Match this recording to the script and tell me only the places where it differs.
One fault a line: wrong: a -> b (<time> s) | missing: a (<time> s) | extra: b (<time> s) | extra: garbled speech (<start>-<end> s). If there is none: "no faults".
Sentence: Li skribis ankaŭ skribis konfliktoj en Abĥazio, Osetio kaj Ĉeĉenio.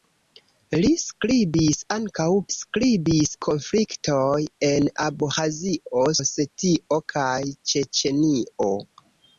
no faults